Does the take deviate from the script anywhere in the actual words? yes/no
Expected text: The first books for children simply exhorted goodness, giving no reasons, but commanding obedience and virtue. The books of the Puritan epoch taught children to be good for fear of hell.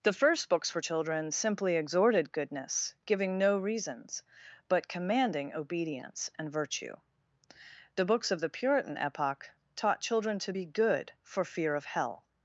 no